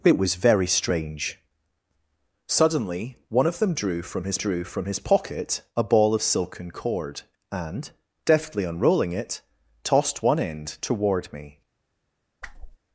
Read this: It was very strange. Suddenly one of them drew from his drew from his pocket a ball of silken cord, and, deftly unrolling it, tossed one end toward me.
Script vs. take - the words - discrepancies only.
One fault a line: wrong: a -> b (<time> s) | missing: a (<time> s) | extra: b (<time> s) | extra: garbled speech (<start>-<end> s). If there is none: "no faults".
no faults